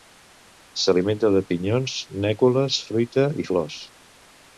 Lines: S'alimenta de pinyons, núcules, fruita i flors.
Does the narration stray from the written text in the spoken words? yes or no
no